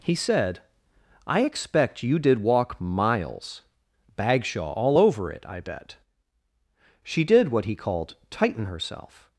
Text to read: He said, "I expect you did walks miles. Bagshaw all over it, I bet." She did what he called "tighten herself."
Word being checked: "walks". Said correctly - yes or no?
no